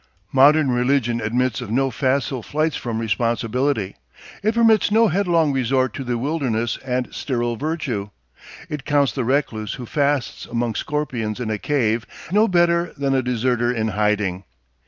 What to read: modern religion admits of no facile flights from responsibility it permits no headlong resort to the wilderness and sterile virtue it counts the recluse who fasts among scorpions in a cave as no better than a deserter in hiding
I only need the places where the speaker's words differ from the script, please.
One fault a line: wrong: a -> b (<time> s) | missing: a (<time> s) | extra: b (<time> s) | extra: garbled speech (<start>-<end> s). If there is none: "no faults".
missing: as (12.1 s)